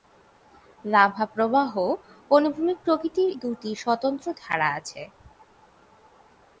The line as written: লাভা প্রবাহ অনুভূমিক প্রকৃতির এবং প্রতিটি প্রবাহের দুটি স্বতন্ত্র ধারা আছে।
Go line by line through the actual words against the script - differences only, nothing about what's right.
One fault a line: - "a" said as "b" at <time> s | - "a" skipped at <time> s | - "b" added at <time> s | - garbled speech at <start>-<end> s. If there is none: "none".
- "এবং প্রতিটি প্রবাহের" skipped at 3.3 s